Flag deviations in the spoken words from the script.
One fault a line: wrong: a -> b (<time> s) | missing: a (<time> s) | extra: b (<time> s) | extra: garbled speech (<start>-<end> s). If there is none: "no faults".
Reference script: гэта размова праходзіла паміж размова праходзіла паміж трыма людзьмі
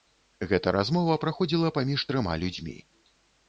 missing: размова праходзіла паміж (2.1 s)